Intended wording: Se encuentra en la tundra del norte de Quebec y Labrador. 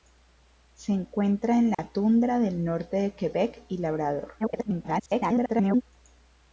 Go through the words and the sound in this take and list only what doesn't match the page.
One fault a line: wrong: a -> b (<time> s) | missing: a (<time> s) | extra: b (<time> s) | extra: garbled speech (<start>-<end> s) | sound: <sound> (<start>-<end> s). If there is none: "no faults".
sound: dropout (1.7-1.8 s)
extra: garbled speech (4.4-5.8 s)